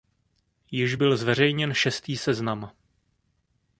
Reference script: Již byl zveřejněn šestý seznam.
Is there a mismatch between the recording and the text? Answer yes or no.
no